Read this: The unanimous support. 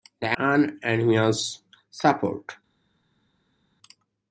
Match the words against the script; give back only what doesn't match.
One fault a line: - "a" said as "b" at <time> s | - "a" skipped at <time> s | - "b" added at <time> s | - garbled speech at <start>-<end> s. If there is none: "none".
none